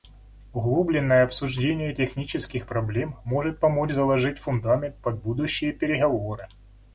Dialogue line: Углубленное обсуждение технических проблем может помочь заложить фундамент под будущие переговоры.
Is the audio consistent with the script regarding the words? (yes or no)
yes